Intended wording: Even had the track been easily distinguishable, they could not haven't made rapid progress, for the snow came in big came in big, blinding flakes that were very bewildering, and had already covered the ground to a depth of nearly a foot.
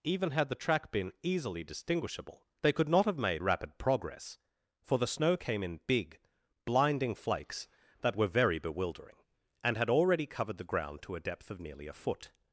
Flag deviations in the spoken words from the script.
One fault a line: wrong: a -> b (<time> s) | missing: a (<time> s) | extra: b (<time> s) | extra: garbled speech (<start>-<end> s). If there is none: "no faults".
wrong: haven't -> have (3.0 s)
missing: came in big (6.2 s)